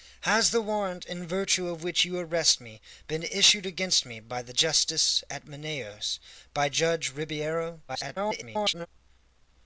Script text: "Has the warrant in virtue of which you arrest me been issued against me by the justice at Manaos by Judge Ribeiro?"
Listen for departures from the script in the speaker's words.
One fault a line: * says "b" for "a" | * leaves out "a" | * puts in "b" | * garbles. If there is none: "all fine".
* garbles